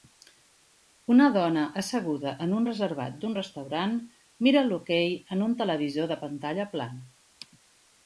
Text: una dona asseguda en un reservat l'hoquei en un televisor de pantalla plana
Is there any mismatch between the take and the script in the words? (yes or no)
yes